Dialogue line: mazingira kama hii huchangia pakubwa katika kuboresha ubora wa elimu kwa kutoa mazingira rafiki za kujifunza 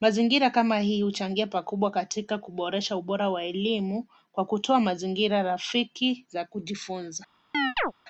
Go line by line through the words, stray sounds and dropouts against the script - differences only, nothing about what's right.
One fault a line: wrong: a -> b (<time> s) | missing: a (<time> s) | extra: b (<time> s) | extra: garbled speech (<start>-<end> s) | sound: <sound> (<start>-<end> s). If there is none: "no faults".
sound: chirp (7.5-7.9 s)